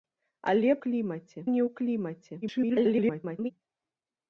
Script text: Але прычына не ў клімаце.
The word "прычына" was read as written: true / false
false